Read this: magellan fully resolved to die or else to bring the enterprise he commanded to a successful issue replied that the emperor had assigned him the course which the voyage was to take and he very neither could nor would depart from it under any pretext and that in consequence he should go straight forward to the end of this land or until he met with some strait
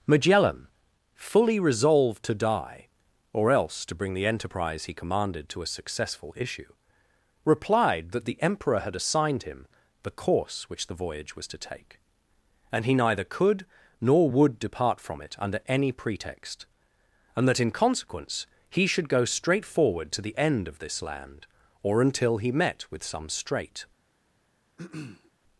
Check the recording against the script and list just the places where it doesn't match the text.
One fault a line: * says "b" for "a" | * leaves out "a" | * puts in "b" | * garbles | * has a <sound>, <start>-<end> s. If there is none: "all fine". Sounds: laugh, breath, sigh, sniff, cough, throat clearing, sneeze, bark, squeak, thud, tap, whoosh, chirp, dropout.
* leaves out "very"
* has a throat clearing, 24.8-25.3 s